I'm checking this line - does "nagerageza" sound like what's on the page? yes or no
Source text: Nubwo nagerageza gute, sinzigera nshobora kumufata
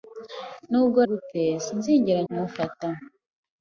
no